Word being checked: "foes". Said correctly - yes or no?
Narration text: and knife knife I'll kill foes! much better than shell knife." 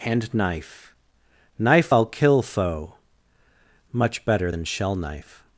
no